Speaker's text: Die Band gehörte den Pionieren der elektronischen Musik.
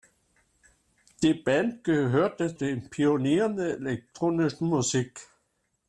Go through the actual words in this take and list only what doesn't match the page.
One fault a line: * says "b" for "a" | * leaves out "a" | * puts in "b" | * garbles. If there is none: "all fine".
all fine